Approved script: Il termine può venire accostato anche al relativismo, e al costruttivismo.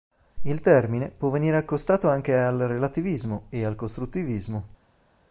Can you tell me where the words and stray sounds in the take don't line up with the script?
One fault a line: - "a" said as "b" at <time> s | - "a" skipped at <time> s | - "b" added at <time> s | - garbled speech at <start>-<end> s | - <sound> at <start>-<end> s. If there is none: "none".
none